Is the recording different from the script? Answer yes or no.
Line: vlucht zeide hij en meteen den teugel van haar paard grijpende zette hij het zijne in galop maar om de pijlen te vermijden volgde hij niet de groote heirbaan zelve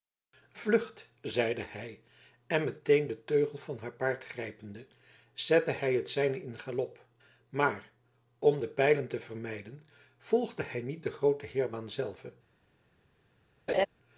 no